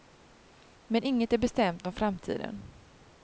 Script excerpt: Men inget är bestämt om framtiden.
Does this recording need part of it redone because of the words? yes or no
no